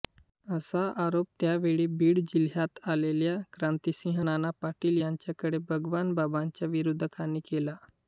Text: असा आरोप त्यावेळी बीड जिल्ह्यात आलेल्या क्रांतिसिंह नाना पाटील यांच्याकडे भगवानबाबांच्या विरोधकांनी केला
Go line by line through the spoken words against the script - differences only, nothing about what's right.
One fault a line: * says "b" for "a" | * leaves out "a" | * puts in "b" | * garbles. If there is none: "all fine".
all fine